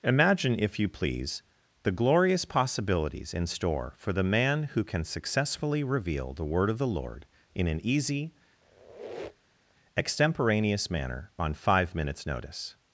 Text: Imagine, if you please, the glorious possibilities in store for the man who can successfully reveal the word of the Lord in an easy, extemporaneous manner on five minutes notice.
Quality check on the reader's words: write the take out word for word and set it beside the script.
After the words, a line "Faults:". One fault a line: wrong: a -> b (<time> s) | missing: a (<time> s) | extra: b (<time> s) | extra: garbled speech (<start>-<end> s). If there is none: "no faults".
Imagine, if you please, the glorious possibilities in store for the man who can successfully reveal the word of the Lord in an easy, extemporaneous manner on five minutes notice.
Faults:
no faults